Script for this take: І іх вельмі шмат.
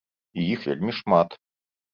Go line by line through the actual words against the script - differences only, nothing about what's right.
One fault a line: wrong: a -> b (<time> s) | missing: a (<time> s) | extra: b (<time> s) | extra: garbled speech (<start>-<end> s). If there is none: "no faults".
no faults